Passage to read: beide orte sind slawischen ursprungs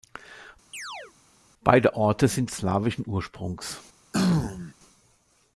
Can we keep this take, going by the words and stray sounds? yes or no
no